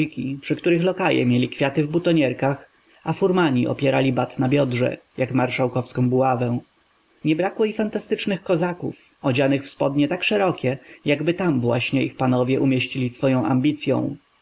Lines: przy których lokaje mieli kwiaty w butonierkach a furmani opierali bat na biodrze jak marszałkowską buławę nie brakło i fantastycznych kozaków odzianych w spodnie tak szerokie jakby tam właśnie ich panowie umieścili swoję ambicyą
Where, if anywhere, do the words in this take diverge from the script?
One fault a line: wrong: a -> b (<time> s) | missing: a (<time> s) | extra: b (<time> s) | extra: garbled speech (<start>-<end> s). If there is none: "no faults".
no faults